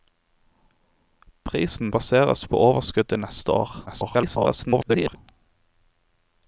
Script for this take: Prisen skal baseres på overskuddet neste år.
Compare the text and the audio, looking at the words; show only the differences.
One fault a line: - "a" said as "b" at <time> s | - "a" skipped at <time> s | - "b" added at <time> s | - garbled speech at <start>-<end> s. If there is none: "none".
- "skal" skipped at 1.9 s
- garbled speech at 3.9-5.2 s